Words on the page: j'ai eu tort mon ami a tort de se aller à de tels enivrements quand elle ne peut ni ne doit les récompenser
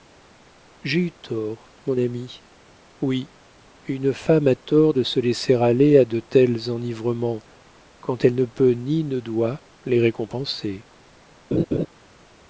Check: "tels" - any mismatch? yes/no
no